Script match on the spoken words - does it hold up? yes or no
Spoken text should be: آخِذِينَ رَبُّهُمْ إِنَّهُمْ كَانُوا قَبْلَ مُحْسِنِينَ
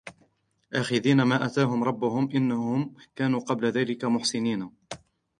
no